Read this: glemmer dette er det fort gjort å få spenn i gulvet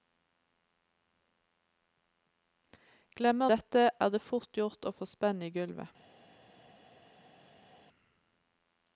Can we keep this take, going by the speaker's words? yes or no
yes